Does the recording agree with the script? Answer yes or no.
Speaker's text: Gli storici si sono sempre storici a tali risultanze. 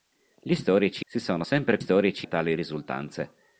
yes